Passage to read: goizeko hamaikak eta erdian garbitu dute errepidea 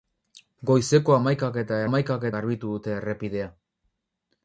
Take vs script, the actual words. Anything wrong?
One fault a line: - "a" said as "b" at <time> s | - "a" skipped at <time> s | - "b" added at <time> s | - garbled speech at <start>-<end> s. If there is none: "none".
- "erdian" said as "hamaikak" at 1.8 s